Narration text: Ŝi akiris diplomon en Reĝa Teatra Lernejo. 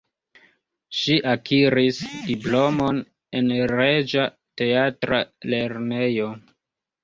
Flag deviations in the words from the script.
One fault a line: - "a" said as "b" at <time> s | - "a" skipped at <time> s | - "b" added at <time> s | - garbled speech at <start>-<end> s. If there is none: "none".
none